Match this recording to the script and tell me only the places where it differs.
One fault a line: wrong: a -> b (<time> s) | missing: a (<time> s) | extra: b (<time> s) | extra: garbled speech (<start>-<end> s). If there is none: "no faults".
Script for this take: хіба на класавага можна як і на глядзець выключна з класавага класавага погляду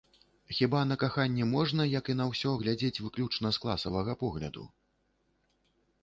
wrong: класавага -> каханне (1.0 s)
extra: ўсё (2.3 s)
missing: класавага (4.1 s)